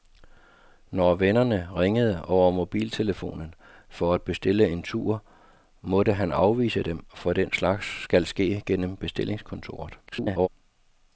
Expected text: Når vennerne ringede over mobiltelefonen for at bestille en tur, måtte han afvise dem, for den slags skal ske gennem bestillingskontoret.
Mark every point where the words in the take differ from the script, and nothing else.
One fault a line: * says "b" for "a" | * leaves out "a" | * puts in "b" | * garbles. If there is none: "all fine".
* garbles